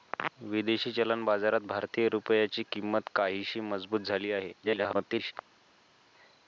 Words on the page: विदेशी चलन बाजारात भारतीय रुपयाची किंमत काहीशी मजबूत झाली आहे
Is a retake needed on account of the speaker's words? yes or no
yes